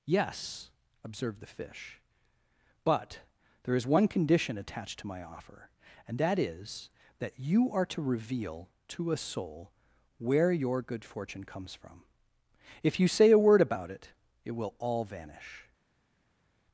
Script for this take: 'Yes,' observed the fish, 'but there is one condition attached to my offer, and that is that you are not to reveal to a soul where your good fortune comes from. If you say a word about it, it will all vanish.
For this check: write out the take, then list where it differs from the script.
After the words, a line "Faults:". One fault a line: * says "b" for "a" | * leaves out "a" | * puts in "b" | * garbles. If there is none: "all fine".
'Yes,' observed the fish, 'but there is one condition attached to my offer, and that is that you are to reveal to a soul where your good fortune comes from. If you say a word about it, it will all vanish.
Faults:
* leaves out "not"